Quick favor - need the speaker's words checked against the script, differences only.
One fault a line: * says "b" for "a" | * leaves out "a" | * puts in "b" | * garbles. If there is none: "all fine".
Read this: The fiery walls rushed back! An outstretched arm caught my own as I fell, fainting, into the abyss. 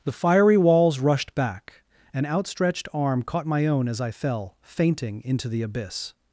all fine